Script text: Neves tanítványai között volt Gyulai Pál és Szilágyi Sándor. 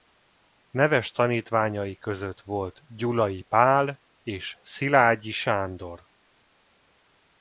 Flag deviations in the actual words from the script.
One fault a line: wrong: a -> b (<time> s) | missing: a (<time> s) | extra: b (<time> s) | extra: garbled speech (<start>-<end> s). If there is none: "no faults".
no faults